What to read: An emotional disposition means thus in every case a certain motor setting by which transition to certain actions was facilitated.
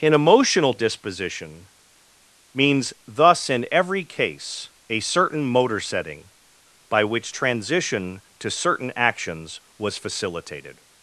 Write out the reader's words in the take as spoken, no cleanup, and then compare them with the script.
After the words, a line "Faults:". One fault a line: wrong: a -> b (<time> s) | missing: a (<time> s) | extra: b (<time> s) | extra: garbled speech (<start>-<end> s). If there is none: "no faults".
An emotional disposition means thus in every case a certain motor setting by which transition to certain actions was facilitated.
Faults:
no faults